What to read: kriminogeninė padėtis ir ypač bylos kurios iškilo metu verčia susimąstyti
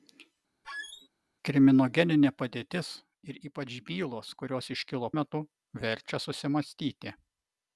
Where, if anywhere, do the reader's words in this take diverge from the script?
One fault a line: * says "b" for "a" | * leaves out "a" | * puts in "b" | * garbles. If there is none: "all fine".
all fine